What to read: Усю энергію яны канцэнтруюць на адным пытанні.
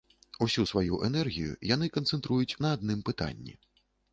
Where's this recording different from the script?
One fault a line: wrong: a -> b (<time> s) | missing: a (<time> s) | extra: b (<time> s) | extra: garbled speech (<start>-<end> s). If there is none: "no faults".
extra: сваю (0.7 s)